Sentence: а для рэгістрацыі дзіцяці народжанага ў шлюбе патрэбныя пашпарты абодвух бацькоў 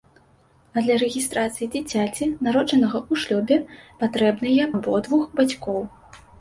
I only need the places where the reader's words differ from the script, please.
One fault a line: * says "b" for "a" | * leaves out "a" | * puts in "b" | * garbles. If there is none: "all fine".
* leaves out "пашпарты"